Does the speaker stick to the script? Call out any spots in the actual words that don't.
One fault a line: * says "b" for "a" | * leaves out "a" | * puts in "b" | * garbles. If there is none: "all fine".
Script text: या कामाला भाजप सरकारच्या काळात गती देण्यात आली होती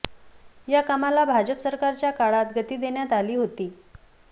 all fine